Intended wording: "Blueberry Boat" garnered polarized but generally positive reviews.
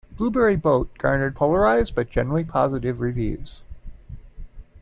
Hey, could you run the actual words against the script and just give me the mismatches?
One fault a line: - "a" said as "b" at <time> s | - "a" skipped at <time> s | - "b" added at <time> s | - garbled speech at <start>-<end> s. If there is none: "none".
none